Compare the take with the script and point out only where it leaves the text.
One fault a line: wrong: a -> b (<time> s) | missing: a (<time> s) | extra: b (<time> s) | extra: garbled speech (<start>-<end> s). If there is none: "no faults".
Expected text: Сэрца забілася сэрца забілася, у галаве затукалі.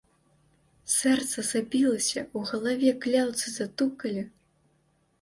missing: сэрца забілася (2.2 s)
extra: кляўцы (3.1 s)